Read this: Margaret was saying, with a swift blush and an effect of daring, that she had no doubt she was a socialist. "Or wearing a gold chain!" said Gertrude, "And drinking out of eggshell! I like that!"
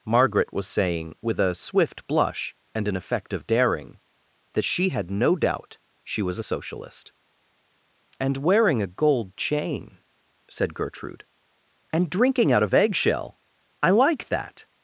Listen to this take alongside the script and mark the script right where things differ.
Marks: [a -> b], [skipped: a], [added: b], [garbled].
Margaret was saying, with a swift blush and an effect of daring, that she had no doubt she was a socialist. ["Or -> And] wearing a gold chain!" said Gertrude, "And drinking out of eggshell! I like that!"